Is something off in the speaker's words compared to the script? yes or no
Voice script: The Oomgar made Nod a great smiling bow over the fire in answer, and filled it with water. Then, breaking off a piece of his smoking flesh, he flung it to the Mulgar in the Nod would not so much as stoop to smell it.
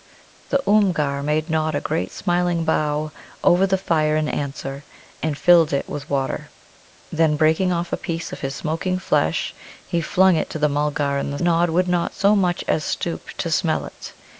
no